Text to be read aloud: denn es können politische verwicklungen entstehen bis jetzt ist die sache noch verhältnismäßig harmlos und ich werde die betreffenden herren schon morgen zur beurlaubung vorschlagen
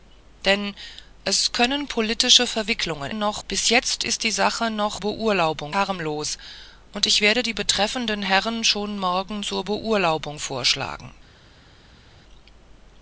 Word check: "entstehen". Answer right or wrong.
wrong